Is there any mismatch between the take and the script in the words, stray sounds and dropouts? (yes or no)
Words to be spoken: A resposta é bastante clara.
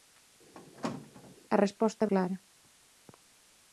yes